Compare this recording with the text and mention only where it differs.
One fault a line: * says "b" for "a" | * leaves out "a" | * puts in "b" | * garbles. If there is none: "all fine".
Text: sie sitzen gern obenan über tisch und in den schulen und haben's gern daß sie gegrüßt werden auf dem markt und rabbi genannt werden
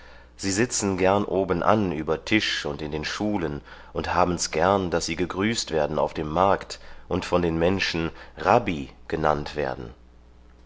* puts in "von den menschen"